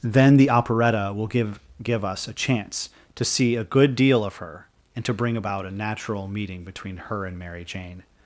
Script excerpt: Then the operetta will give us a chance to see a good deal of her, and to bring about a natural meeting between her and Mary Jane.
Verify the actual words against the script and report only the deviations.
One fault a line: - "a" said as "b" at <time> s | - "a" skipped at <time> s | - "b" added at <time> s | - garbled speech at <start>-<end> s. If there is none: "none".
- "give" added at 1.8 s